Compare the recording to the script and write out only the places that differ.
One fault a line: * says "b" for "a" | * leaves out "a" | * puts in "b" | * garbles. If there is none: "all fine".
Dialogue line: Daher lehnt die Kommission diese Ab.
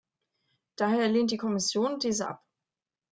all fine